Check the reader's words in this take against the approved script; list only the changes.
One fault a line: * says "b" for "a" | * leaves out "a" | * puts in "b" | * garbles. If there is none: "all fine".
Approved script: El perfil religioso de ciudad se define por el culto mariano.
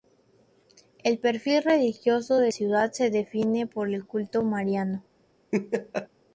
all fine